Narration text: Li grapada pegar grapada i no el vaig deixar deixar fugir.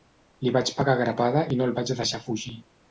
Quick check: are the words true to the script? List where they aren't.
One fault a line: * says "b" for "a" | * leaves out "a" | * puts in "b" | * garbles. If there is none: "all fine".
* says "vaig" for "grapada"
* leaves out "deixar"